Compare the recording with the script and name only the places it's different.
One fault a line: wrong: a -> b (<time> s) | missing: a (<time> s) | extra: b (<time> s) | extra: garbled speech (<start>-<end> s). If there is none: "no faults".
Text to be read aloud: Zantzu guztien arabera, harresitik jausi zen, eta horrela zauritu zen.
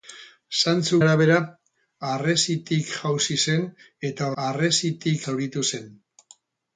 missing: guztien (1.0 s)
wrong: horrela -> harresitik (4.4 s)